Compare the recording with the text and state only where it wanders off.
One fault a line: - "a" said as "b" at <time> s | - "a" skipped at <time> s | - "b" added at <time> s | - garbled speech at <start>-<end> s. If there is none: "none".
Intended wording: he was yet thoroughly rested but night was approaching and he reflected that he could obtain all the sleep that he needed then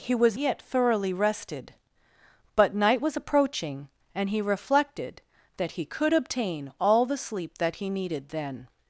none